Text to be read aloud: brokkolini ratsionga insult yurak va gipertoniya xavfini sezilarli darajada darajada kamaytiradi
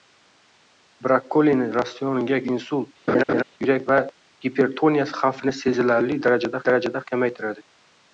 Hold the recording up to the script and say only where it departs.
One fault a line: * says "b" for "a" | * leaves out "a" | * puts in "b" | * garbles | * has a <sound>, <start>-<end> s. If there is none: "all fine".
* has a laugh, 3.1-3.4 s